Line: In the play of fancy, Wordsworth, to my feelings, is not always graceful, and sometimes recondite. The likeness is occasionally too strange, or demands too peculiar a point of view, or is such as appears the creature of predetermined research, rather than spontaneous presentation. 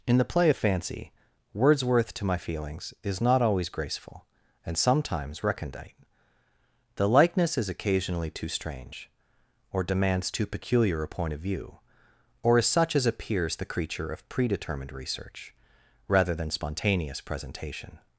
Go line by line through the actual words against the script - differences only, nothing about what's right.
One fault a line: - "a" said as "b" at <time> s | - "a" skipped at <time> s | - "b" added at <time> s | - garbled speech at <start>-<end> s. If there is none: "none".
none